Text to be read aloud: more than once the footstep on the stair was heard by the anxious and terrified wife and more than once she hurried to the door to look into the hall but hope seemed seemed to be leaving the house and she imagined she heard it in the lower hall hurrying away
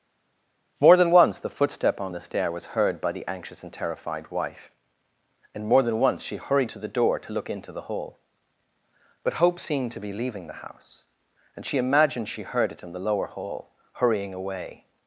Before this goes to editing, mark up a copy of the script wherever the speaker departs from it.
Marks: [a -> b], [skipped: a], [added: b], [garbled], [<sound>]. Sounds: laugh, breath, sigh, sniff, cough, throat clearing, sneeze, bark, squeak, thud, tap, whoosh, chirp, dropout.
more than once the footstep on the stair was heard by the anxious and terrified wife and more than once she hurried to the door to look into the hall but hope seemed [skipped: seemed] to be leaving the house and she imagined she heard it in the lower hall hurrying away